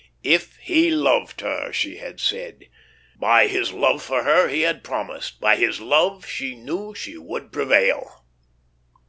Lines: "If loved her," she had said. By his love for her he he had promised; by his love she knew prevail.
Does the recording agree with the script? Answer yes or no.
no